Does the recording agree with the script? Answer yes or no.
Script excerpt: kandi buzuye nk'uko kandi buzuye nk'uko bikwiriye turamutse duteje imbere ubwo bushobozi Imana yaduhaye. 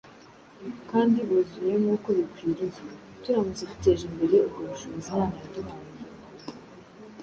no